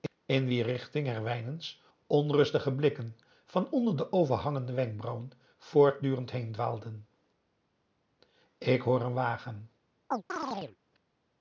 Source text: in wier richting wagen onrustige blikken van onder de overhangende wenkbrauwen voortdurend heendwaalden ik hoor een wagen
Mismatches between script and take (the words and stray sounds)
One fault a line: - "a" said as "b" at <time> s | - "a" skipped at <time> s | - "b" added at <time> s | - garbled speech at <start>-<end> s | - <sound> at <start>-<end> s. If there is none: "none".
- "wagen" said as "herwijnen's" at 1.1 s
- chirp at 10.1-10.8 s